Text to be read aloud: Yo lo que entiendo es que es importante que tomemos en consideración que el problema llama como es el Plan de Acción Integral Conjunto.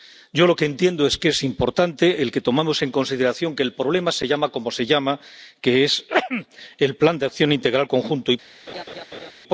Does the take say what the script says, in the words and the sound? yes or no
no